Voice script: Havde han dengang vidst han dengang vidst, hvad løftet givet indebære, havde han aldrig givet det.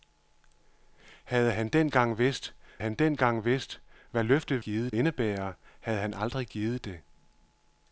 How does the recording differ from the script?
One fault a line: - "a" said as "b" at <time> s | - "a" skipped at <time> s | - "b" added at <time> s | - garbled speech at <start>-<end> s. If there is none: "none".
none